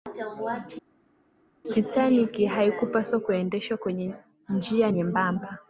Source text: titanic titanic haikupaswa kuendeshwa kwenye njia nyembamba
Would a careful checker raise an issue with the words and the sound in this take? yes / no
yes